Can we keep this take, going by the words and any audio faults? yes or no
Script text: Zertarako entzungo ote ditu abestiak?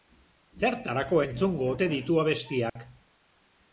no